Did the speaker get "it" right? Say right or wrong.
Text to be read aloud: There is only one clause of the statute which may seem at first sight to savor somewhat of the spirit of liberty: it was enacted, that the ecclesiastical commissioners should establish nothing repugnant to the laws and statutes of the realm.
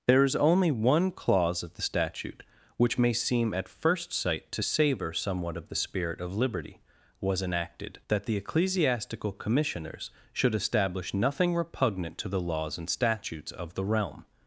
wrong